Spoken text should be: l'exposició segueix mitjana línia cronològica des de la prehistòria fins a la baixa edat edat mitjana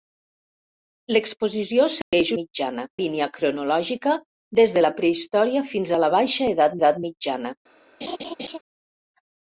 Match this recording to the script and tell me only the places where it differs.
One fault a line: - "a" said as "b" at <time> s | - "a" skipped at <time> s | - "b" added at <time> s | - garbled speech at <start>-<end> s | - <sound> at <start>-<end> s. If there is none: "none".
- dropout at 2.0-2.1 s
- laugh at 8.0-8.6 s